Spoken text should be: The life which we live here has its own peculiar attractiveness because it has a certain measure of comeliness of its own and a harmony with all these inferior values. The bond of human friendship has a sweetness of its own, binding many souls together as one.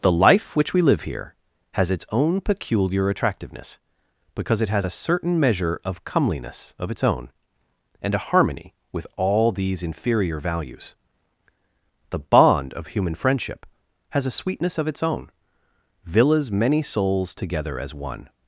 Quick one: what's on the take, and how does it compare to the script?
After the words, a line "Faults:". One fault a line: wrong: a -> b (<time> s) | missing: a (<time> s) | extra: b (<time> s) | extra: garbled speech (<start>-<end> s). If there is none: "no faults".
The life which we live here has its own peculiar attractiveness because it has a certain measure of comeliness of its own and a harmony with all these inferior values. The bond of human friendship has a sweetness of its own, villas many souls together as one.
Faults:
wrong: binding -> villas (16.0 s)